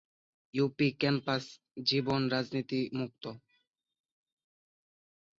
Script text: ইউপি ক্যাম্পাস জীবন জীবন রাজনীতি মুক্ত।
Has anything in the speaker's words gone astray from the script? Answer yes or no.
yes